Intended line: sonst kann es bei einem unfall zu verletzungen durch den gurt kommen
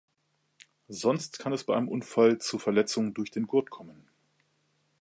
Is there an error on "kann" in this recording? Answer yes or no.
no